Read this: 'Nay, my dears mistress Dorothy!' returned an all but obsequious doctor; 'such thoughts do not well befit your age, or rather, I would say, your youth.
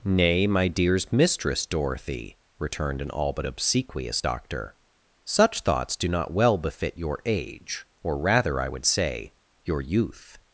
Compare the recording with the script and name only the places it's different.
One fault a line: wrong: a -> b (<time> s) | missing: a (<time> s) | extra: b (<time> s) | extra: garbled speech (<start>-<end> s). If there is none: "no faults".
no faults